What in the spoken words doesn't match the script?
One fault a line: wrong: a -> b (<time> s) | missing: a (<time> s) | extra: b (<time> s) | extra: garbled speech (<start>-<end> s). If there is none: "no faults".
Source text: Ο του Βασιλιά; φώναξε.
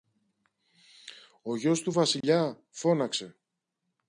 extra: γιος (1.6 s)